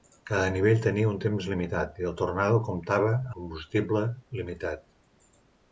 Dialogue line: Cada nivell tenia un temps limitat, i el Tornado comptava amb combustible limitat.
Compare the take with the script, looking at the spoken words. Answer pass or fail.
fail